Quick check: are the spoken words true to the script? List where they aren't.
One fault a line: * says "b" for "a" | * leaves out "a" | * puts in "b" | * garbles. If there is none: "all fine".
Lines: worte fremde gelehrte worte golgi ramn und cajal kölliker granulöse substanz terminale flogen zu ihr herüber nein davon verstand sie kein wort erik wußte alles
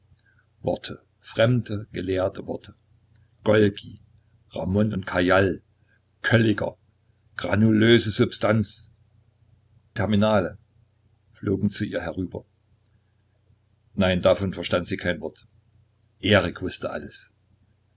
all fine